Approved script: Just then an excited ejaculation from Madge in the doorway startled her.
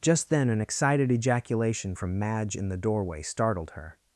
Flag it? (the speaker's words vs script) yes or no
no